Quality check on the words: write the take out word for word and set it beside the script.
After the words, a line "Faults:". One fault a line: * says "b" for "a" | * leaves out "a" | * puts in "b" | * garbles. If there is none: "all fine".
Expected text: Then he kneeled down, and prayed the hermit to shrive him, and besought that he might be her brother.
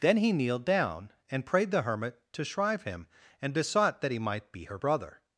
Then he kneeled down, and prayed the hermit to shrive him, and besought that he might be her brother.
Faults:
all fine